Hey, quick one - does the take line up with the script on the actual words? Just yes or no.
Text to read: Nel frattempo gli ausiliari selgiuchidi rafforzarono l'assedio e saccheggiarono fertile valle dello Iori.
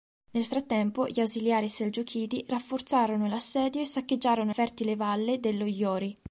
yes